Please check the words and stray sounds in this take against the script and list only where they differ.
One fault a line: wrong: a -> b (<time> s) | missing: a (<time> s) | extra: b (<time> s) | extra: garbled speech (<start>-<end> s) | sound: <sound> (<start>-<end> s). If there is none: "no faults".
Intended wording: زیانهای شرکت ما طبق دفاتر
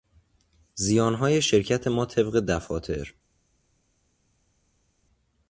no faults